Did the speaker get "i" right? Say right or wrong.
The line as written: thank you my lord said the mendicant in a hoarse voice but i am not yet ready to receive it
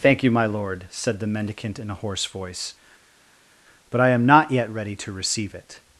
right